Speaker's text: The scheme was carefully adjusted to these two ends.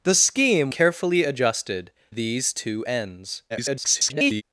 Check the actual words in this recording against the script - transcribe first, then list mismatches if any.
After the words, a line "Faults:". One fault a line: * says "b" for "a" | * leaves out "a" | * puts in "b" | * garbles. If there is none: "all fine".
The scheme carefully adjusted these two ends. [garbled]
Faults:
* leaves out "was"
* leaves out "to"
* garbles